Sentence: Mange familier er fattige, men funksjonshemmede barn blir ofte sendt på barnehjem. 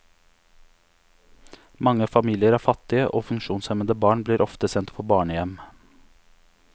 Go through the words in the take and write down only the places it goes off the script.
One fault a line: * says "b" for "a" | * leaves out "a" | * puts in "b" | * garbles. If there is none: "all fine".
* says "og" for "men"